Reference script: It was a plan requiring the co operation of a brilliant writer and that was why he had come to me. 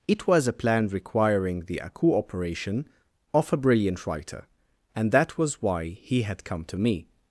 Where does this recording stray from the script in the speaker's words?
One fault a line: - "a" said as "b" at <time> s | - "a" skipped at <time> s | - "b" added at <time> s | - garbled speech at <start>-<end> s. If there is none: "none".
- "co" said as "aku" at 1.8 s